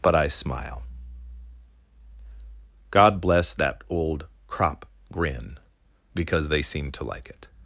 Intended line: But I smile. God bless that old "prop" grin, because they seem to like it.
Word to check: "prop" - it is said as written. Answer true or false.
false